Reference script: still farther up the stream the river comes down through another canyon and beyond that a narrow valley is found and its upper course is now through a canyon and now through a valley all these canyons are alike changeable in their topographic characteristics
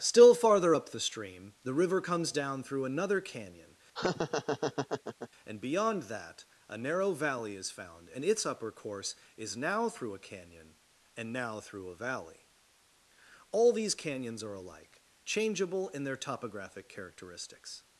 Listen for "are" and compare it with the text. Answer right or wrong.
right